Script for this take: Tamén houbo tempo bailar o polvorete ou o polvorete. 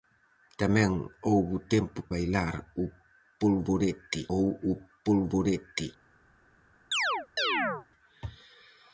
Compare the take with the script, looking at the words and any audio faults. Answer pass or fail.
fail